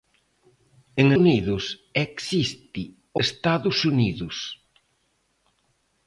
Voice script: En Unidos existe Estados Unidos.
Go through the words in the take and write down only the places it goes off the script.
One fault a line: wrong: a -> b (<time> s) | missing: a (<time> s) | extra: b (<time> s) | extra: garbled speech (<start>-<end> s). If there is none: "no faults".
no faults